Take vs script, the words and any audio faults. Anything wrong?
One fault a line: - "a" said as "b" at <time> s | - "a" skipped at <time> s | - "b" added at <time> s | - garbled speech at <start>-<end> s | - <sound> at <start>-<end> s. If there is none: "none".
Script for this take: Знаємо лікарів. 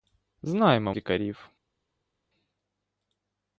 none